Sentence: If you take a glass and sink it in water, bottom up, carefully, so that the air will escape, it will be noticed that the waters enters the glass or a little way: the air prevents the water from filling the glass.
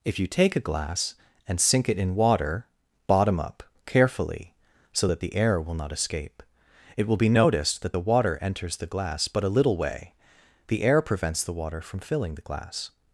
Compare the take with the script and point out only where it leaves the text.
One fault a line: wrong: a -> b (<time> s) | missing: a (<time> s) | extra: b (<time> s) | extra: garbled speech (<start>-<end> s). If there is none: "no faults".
extra: not (5.7 s)
wrong: waters -> water (8.0 s)
wrong: or -> but (9.3 s)